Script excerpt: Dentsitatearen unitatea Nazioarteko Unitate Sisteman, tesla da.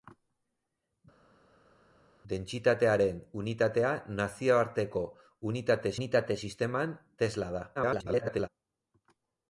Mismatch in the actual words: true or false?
true